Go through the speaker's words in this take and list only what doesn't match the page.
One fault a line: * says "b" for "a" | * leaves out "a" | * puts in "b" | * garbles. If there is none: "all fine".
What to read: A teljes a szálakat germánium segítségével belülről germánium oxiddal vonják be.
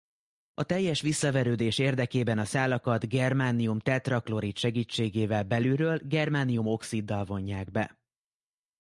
* puts in "visszaverődés érdekében"
* puts in "tetraklorid"